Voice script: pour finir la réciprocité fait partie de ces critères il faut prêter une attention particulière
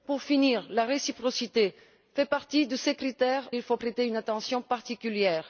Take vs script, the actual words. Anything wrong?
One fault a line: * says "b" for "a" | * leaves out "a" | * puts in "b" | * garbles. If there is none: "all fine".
all fine